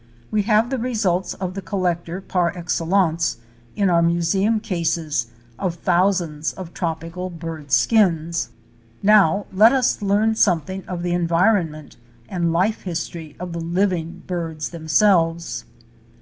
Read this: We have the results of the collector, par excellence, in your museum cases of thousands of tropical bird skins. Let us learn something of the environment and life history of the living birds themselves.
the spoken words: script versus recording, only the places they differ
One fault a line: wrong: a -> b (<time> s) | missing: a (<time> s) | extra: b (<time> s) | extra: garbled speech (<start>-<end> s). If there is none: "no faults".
wrong: your -> our (3.9 s)
extra: Now (9.0 s)